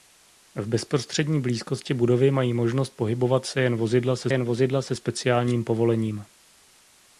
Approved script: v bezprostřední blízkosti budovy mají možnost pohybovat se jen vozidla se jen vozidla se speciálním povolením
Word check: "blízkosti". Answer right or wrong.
right